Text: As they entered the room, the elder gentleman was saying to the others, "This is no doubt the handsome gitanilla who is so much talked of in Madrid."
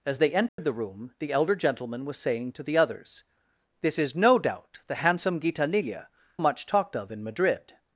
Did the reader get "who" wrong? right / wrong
wrong